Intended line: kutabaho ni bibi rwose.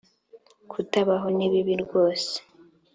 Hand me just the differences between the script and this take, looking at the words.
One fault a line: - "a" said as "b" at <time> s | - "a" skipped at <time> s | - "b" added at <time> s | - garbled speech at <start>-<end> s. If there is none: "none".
none